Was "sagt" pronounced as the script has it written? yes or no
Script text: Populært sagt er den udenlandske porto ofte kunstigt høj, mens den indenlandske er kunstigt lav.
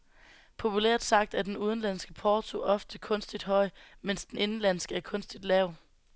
yes